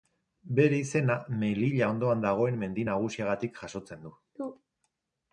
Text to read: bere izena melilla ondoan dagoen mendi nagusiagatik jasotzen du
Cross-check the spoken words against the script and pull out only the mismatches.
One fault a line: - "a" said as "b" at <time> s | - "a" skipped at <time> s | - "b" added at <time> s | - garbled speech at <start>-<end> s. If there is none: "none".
none